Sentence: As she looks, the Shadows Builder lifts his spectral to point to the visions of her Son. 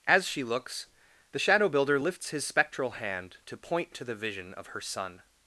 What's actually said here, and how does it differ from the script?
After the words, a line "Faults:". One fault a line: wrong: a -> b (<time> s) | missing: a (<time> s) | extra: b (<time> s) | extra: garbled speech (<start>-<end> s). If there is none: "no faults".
As she looks, the Shadow Builder lifts his spectral hand to point to the vision of her Son.
Faults:
wrong: Shadows -> Shadow (1.4 s)
extra: hand (2.9 s)
wrong: visions -> vision (4.2 s)